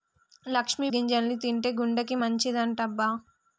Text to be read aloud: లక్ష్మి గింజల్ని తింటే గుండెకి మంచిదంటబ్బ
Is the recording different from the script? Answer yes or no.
no